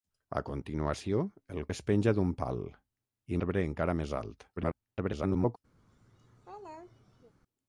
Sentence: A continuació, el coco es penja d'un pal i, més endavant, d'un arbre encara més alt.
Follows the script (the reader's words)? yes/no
no